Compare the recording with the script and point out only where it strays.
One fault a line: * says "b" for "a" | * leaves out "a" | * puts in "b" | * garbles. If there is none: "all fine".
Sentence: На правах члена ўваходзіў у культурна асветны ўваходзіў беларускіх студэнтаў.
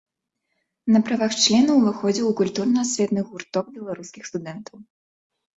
* says "гурток" for "ўваходзіў"